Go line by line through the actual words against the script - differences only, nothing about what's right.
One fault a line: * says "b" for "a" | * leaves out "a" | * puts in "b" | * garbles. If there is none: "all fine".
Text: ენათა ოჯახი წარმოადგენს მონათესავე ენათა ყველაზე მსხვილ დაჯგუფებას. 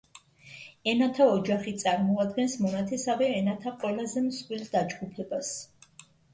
all fine